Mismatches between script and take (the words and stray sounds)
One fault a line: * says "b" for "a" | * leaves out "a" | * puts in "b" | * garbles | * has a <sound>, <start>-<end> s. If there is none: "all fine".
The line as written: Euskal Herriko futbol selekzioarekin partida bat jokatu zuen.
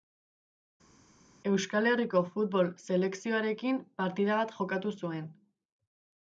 all fine